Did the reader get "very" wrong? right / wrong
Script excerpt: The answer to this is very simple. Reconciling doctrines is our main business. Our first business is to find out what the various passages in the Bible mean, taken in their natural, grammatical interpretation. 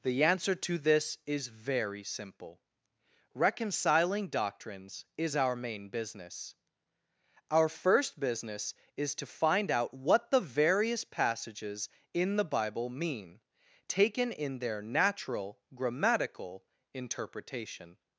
right